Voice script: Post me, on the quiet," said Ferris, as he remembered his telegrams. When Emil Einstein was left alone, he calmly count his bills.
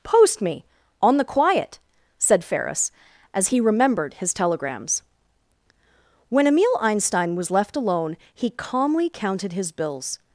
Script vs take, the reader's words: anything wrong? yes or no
yes